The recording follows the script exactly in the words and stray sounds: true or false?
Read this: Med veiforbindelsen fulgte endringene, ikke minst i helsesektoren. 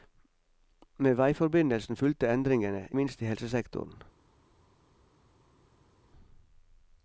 false